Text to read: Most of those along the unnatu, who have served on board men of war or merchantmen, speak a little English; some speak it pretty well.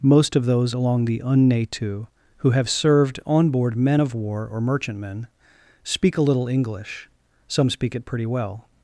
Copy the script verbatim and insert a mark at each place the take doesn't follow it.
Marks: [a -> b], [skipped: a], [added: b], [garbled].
Most of those along the unnatu, who have served on board men of war or merchantmen, speak a little English; some speak it pretty well.